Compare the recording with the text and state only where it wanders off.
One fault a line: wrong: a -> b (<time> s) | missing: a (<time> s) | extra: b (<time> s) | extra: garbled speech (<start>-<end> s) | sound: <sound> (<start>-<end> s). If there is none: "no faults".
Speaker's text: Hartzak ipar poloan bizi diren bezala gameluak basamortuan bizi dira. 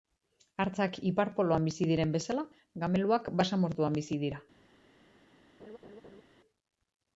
sound: laugh (5.6-6.2 s)